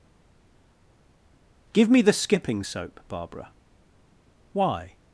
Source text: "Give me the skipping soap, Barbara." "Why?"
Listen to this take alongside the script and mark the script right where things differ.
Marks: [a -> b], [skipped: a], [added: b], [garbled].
"Give me the skipping soap, Barbara." "Why?"